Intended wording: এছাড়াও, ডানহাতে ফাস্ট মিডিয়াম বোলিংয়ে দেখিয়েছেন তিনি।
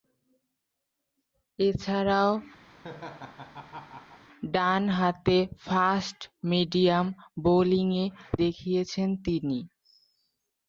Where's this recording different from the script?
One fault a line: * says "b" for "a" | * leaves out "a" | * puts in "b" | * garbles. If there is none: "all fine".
all fine